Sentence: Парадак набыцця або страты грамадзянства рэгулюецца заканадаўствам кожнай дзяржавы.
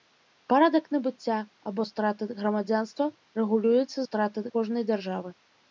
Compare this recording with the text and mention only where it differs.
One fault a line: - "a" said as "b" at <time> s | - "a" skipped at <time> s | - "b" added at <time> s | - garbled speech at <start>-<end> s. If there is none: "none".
- "заканадаўствам" said as "страты" at 4.0 s